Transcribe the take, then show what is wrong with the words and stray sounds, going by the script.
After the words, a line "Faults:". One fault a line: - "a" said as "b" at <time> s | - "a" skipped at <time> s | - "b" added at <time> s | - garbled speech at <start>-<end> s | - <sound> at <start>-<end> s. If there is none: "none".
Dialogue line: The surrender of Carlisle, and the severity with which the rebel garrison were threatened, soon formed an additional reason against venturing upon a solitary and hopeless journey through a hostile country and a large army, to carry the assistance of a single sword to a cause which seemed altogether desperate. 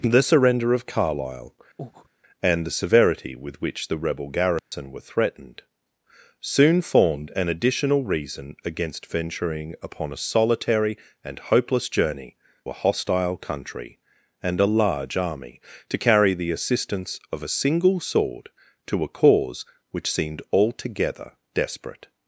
The surrender of Carlisle, and the severity with which the rebel garrison were threatened, soon formed an additional reason against venturing upon a solitary and hopeless journey a hostile country and a large army, to carry the assistance of a single sword to a cause which seemed altogether desperate.
Faults:
- breath at 1.8-2.1 s
- dropout at 4.6-4.7 s
- "through" skipped at 12.4 s